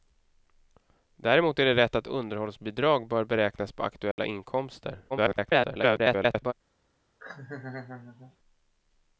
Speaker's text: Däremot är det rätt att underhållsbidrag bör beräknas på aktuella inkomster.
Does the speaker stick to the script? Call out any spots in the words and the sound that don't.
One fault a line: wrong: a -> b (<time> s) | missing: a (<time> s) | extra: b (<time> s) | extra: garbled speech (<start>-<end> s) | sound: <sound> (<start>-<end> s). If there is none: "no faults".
sound: dropout (4.1-4.2 s)
extra: garbled speech (5.1-6.5 s)
sound: laugh (7.2-8.4 s)